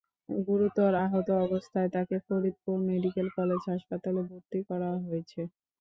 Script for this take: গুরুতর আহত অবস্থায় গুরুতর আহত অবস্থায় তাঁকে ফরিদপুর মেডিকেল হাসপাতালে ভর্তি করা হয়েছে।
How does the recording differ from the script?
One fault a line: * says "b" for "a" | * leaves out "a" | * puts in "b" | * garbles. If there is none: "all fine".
* leaves out "গুরুতর আহত অবস্থায়"
* puts in "কলেজ"